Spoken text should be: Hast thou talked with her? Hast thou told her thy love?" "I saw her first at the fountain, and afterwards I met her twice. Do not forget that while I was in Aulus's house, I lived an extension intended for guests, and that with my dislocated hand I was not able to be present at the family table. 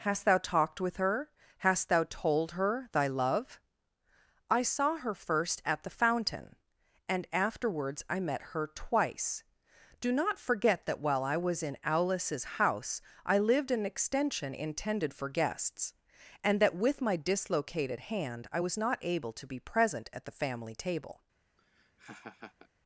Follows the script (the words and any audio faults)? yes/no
no